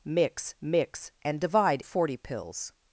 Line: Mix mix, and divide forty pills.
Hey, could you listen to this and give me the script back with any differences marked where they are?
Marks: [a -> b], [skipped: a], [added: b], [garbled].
Mix mix, and divide forty pills.